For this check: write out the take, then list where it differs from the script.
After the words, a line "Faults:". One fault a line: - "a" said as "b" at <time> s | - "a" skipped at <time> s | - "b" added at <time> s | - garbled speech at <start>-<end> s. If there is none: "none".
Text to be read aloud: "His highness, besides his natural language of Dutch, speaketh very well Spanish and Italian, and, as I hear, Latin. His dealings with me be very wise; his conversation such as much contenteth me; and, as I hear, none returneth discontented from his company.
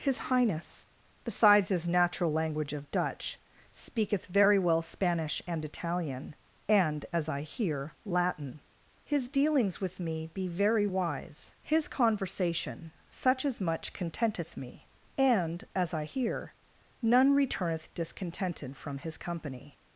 "His highness, besides his natural language of Dutch, speaketh very well Spanish and Italian, and, as I hear, Latin. His dealings with me be very wise; his conversation such as much contenteth me; and, as I hear, none returneth discontented from his company.
Faults:
none